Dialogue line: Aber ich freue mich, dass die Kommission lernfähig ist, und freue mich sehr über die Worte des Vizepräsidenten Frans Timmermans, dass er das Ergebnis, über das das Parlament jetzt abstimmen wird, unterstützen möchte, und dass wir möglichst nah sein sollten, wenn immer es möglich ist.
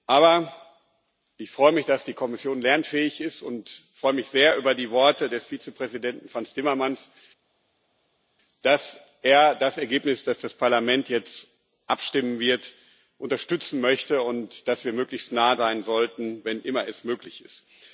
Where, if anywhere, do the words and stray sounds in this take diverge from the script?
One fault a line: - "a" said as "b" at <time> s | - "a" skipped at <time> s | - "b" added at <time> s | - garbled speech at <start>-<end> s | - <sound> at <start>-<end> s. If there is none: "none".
none